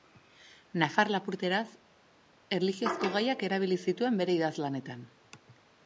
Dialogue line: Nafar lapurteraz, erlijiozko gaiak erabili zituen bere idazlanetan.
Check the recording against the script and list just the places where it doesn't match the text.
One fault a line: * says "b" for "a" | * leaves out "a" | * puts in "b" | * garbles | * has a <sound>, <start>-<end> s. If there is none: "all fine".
all fine